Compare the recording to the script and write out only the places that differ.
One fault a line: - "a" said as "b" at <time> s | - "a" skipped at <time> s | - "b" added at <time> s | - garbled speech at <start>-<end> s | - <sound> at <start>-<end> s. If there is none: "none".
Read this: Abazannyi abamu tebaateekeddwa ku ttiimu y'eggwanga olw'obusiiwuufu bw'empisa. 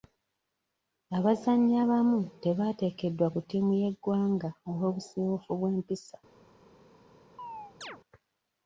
- chirp at 7.4-8.0 s